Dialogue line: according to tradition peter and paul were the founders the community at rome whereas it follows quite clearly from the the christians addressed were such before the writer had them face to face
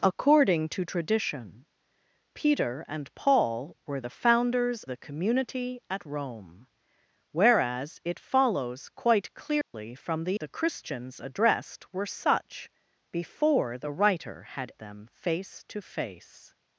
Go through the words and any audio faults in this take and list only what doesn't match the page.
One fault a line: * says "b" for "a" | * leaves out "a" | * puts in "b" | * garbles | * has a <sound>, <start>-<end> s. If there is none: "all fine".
* has a dropout, 9.6-9.7 s